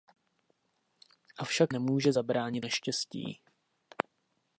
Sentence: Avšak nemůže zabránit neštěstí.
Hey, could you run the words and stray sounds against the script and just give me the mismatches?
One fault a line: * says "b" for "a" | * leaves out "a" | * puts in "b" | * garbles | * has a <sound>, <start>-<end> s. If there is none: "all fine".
all fine